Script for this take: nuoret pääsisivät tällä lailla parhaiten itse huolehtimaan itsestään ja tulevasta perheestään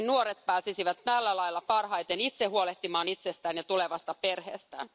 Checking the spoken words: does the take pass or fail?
pass